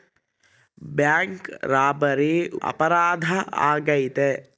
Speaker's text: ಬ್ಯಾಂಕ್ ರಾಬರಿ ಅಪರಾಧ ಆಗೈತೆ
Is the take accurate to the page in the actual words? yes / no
yes